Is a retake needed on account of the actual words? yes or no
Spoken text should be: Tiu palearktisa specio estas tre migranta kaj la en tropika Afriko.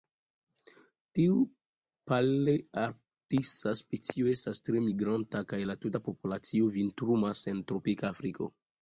yes